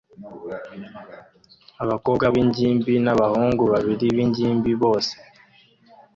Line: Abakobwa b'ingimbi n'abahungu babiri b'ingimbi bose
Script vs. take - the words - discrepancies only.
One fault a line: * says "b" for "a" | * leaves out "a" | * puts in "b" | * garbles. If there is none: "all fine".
all fine